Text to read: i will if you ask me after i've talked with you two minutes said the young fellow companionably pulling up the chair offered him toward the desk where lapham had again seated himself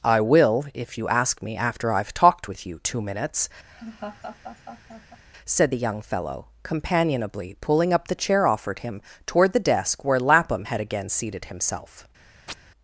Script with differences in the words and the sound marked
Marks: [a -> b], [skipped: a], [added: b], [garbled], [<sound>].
i will if you ask me after i've talked with you two minutes [laugh] said the young fellow companionably pulling up the chair offered him toward the desk where lapham had again seated himself [chirp]